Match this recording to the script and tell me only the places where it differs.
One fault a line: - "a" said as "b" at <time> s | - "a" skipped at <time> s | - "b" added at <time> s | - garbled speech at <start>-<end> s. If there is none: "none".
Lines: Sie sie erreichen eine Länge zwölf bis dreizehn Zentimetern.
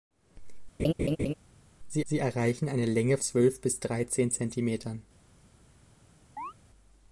none